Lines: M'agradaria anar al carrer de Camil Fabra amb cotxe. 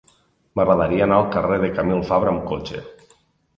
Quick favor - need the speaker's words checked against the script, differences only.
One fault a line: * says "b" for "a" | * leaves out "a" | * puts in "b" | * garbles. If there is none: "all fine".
all fine